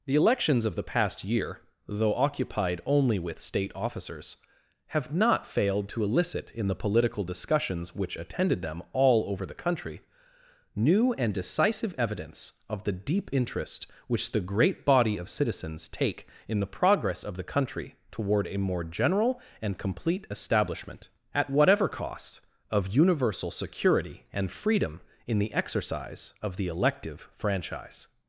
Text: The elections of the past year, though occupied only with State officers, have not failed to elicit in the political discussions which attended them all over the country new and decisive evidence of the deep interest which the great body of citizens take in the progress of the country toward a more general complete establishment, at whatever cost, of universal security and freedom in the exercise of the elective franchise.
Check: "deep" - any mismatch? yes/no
no